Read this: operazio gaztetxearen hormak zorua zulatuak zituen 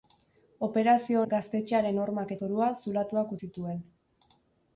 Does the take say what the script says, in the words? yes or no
yes